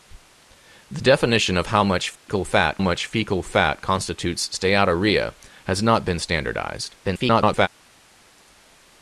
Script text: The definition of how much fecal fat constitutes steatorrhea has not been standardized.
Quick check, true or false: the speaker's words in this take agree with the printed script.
false